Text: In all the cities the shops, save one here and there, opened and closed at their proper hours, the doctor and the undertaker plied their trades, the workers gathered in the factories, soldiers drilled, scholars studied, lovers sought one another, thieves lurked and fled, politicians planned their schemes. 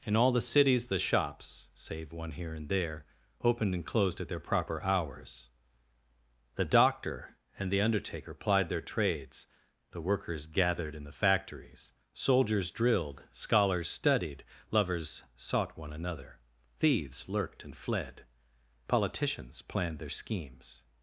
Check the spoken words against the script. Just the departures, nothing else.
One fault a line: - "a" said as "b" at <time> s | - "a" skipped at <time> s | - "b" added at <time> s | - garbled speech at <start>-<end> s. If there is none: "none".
none